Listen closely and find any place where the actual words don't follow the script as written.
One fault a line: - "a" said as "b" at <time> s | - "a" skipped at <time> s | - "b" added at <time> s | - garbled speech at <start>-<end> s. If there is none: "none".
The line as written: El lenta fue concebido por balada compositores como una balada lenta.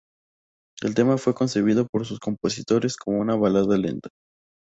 - "lenta" said as "tema" at 0.9 s
- "balada" said as "sus" at 2.1 s